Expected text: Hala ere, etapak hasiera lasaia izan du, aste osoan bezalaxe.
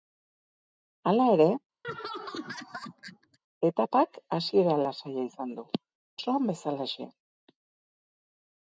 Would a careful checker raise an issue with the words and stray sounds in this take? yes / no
yes